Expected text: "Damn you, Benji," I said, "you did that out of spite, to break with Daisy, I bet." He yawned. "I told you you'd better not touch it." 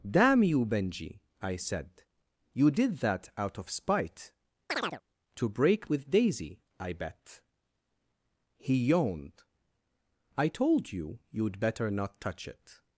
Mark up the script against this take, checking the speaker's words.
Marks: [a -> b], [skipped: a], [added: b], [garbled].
"Damn you, Benji," I said, "you did that out of spite, to break with Daisy, I bet." He yawned. "I told you you'd better not touch it."